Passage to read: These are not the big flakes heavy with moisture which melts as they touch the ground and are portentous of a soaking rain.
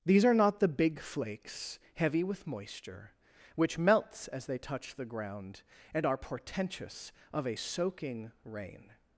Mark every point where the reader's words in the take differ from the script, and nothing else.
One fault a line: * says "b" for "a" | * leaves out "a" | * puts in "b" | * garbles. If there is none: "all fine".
all fine